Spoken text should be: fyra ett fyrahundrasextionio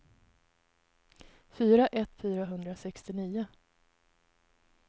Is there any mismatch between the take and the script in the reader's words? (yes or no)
no